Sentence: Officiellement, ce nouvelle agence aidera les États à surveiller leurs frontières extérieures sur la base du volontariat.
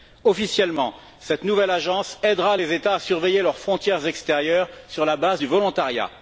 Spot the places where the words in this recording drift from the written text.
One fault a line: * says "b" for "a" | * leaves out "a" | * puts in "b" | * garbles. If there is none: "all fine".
* says "cette" for "ce"